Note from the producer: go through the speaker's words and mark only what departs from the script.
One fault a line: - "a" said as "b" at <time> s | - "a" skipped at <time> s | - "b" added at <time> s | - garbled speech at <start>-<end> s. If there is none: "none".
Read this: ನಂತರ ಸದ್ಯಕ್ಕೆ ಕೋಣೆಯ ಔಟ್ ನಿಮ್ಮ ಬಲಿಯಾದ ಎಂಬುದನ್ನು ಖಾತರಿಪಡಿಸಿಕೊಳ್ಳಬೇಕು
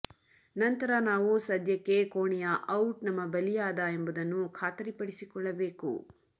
- "ನಾವು" added at 1.0 s
- "ನಿಮ್ಮ" said as "ನಮ್ಮ" at 3.0 s